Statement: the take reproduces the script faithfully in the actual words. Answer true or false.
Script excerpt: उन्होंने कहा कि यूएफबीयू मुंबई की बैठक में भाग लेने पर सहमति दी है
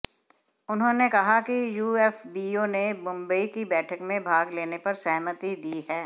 false